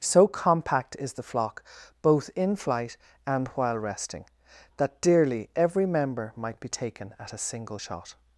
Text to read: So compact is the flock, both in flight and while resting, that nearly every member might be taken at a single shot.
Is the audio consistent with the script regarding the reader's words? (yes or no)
no